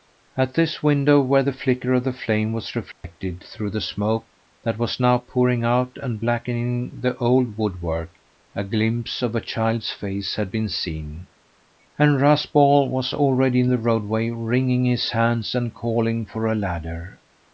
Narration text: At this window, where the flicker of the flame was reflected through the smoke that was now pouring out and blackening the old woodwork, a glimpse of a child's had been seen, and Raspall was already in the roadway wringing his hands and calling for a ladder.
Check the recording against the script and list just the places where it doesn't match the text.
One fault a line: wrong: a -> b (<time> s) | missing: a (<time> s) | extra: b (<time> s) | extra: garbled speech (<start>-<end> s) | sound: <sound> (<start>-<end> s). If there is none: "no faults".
sound: dropout (2.9-3.0 s)
extra: face (9.9 s)